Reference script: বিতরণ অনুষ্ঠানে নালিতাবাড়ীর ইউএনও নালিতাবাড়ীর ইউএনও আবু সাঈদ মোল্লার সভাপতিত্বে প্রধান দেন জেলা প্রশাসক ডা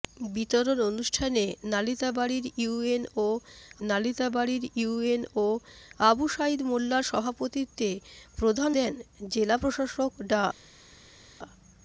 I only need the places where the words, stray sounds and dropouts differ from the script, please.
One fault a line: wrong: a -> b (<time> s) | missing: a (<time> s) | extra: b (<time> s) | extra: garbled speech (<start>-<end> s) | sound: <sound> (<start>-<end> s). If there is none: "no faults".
no faults